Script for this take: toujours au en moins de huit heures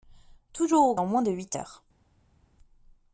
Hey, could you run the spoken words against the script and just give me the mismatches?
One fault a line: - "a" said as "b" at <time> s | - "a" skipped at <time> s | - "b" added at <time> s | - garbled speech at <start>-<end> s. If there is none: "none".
none